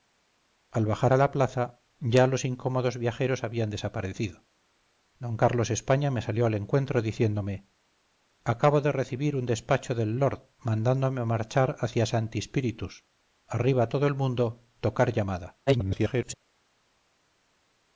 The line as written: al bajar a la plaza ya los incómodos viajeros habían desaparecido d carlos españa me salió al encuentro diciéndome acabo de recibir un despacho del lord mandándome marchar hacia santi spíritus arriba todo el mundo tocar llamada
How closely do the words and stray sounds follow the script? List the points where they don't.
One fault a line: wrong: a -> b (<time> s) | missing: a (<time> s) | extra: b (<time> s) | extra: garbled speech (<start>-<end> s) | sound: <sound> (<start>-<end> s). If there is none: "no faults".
extra: garbled speech (15.7-16.3 s)